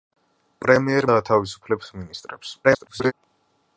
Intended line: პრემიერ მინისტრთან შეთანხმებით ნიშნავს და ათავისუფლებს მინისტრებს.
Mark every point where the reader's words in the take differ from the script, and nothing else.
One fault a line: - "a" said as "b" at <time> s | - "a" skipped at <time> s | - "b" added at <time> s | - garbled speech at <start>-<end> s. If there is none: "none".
- "მინისტრთან შეთანხმებით ნიშნავს" skipped at 1.1 s
- garbled speech at 2.6-3.1 s